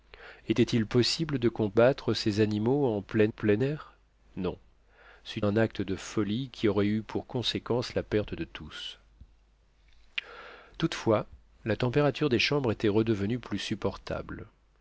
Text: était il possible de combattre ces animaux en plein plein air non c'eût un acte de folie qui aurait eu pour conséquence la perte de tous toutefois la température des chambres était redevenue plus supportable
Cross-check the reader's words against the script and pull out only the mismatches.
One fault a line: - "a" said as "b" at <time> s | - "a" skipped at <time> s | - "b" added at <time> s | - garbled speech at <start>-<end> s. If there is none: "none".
none